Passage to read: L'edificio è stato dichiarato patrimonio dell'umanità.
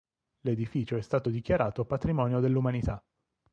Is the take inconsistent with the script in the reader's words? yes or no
no